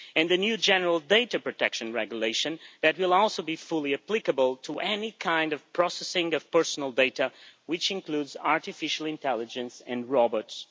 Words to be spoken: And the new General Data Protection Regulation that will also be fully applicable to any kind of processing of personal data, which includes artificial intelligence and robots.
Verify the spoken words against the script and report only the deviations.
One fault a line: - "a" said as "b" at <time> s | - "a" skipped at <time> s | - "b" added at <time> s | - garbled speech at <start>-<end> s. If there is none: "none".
none